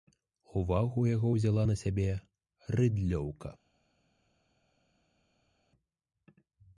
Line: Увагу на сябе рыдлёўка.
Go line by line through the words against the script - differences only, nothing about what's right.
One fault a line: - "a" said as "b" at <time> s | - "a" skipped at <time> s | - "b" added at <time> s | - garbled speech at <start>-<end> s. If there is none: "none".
- "яго ўзяла" added at 1.1 s